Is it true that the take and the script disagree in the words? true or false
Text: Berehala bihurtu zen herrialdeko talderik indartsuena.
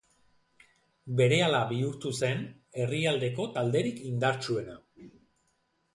false